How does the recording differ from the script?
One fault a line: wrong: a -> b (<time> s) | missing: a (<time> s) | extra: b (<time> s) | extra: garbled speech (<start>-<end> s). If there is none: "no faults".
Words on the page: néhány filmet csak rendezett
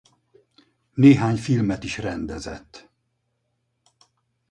wrong: csak -> is (1.8 s)